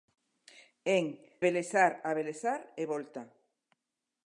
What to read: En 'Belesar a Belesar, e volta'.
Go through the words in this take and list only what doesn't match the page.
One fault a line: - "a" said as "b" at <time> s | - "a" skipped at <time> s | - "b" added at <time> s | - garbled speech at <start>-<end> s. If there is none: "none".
none